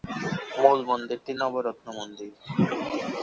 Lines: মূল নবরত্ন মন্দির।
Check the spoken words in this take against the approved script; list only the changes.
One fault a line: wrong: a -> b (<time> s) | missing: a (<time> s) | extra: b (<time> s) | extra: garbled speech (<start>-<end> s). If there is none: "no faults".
extra: মন্দিরটি (0.9 s)